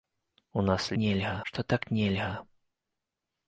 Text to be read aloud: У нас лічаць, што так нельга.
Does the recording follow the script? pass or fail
fail